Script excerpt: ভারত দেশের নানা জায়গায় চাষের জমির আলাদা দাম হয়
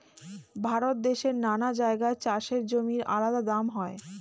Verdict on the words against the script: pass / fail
pass